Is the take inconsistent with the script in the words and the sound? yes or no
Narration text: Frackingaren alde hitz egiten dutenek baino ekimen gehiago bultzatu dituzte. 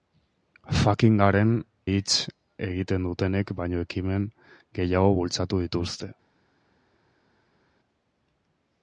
yes